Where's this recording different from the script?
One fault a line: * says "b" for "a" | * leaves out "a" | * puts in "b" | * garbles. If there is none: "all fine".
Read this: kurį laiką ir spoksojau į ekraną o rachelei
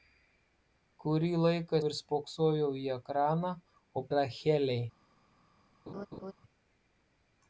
all fine